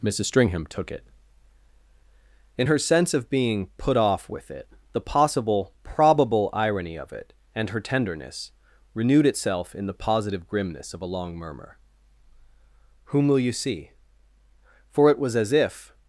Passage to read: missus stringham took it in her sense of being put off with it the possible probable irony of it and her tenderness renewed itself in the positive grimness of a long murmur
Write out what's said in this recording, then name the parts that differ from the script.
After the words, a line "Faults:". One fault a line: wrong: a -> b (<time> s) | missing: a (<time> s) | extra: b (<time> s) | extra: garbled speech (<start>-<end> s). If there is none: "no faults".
missus stringham took it in her sense of being put off with it the possible probable irony of it and her tenderness renewed itself in the positive grimness of a long murmur whom will you see for it was as if
Faults:
extra: whom will you see for it was as if (13.1 s)